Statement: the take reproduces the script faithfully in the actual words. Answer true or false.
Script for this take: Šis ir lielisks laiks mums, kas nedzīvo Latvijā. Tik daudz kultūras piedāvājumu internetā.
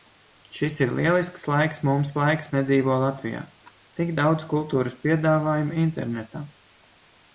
false